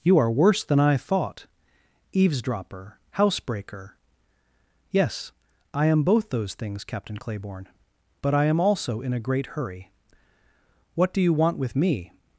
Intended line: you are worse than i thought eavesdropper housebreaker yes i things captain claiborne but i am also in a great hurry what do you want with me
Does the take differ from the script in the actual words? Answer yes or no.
yes